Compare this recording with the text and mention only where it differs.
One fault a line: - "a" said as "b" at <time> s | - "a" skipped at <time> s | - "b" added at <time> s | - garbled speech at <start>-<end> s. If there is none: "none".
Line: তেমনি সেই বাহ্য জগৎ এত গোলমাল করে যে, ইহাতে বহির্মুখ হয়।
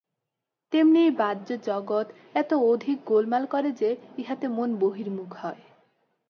- "সেই" said as "এই" at 1.0 s
- "অধিক" added at 2.5 s
- "মন" added at 4.5 s